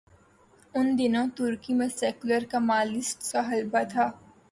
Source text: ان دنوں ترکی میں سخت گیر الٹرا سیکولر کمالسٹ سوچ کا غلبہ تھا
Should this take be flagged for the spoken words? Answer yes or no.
yes